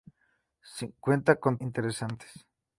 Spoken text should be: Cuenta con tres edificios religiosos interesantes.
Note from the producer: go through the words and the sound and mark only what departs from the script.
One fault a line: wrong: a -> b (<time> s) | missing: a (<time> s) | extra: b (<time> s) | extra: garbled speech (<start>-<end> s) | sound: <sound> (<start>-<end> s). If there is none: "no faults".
missing: tres edificios religiosos (1.6 s)